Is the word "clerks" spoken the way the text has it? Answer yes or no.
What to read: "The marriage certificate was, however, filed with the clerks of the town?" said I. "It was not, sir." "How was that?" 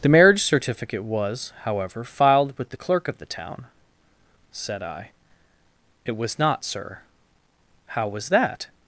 no